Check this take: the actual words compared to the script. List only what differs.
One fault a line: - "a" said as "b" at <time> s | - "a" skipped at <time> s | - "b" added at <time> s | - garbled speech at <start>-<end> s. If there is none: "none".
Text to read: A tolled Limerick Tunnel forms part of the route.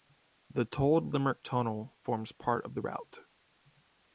- "A" said as "The" at 0.5 s